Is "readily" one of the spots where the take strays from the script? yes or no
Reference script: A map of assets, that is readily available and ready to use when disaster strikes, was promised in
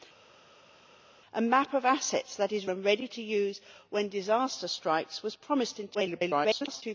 yes